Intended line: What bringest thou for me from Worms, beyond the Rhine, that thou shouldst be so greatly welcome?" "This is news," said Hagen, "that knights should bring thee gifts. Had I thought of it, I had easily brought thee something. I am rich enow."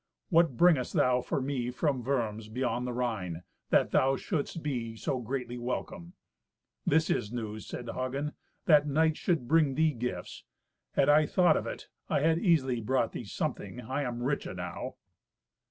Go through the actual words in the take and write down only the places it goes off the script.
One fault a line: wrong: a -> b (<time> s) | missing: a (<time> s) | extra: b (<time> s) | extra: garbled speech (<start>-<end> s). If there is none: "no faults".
no faults